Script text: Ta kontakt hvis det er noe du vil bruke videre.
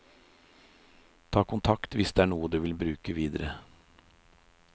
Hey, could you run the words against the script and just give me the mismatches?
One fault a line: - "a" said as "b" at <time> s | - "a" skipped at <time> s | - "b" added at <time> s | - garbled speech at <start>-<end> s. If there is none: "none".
none